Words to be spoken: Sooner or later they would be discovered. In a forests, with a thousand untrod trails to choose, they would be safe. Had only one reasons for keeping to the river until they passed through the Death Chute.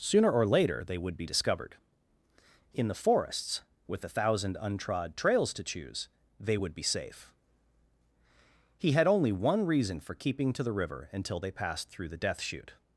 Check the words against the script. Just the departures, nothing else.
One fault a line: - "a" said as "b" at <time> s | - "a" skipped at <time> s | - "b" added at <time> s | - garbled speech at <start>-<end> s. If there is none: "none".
- "a" said as "the" at 2.9 s
- "He" added at 8.8 s
- "reasons" said as "reason" at 9.7 s